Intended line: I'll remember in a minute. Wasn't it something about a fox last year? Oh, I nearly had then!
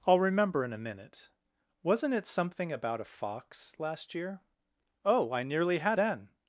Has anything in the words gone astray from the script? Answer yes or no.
no